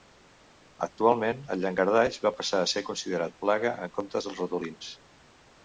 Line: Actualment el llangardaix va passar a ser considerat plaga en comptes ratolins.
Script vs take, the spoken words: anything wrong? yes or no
yes